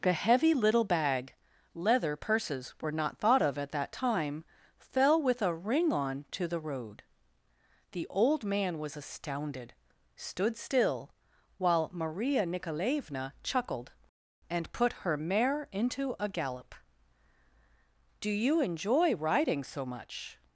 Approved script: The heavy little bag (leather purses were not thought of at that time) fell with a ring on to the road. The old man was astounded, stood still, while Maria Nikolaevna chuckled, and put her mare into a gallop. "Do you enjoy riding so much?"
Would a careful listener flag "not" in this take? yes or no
no